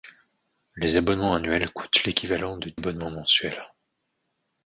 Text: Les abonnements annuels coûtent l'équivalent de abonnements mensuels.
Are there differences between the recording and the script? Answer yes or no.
no